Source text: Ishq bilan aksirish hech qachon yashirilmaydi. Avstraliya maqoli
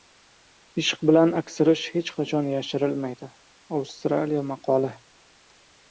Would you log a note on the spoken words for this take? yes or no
no